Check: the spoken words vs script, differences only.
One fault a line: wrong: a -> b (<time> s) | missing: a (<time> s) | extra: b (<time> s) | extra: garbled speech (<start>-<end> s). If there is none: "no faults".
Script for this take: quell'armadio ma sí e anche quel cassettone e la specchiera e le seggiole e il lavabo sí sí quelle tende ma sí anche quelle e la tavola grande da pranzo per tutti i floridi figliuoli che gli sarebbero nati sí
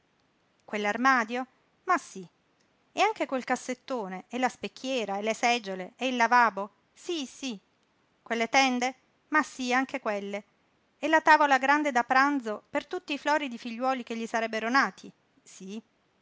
no faults